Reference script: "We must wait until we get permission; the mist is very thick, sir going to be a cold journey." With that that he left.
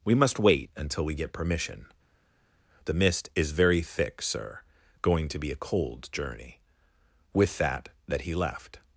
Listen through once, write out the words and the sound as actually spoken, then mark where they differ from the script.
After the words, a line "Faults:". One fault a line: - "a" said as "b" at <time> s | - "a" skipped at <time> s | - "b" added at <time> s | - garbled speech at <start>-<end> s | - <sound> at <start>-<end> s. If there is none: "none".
"We must wait until we get permission; the mist is very thick, sir going to be a cold journey." With that that he left.
Faults:
none